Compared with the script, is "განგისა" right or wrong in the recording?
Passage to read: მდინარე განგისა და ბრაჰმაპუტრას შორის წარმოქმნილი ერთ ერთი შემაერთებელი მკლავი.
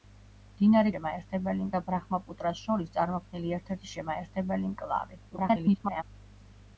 wrong